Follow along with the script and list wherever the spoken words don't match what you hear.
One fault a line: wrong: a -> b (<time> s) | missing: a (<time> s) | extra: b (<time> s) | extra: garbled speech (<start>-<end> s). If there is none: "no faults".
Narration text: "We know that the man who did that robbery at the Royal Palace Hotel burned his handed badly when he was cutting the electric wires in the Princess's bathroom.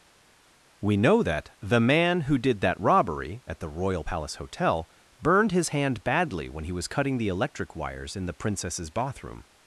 wrong: handed -> hand (5.7 s)